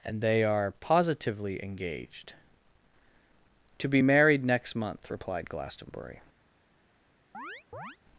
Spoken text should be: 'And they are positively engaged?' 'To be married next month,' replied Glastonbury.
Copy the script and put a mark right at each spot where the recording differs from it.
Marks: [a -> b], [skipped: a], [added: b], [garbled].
'And they are positively engaged?' 'To be married next month,' replied Glastonbury.